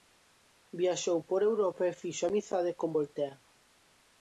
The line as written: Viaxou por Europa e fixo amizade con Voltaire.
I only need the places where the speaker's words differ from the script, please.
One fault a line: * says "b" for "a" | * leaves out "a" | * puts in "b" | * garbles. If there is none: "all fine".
all fine